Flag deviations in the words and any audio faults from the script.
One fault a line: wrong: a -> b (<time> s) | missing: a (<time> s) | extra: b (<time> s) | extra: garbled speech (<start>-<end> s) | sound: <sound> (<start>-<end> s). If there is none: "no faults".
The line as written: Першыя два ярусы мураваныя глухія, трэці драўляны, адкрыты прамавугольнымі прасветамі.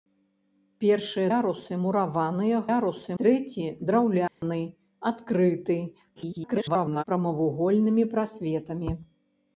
missing: два (1.3 s)
wrong: глухія -> ярусы (2.7 s)
sound: dropout (4.3-4.4 s)
extra: garbled speech (6.2-7.0 s)